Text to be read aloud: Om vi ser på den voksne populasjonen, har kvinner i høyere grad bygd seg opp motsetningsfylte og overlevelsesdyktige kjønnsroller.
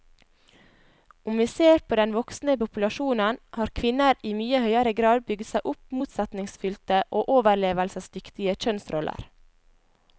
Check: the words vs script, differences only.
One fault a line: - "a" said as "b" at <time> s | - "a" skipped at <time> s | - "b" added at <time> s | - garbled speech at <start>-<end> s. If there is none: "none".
- "mye" added at 4.4 s